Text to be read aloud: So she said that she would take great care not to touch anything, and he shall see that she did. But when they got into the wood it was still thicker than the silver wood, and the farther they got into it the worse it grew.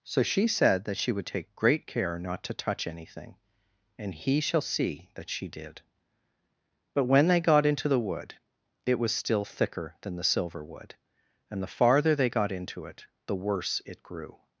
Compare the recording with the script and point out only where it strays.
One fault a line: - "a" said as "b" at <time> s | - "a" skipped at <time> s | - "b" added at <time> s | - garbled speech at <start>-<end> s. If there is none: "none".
none